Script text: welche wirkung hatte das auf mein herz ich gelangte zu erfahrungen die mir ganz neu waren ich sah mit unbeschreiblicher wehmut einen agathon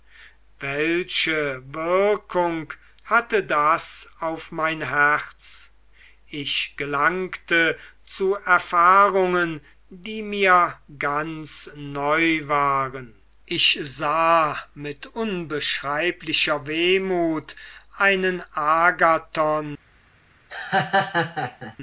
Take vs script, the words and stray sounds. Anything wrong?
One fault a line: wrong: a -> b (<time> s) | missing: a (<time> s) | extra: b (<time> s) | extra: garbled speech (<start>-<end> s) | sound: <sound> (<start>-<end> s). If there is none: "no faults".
sound: laugh (20.5-21.8 s)